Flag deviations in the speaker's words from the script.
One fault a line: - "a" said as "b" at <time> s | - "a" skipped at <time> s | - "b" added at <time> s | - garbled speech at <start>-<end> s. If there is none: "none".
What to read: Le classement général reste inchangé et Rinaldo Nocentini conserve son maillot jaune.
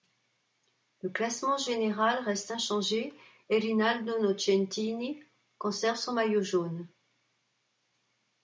none